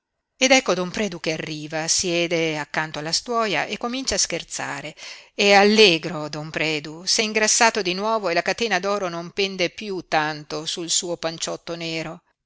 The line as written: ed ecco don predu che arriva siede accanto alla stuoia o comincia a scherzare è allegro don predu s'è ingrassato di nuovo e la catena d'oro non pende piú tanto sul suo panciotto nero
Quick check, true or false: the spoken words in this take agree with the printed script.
false